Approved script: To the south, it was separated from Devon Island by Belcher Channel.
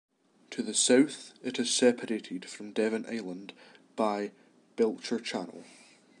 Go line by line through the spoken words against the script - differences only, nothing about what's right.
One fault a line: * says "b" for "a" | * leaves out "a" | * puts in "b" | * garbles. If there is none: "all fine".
* says "is" for "was"